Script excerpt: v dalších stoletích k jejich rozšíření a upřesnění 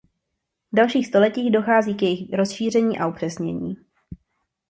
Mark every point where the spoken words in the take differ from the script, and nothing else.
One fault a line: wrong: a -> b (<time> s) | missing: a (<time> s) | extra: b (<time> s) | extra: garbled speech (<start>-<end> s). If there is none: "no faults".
extra: dochází (1.5 s)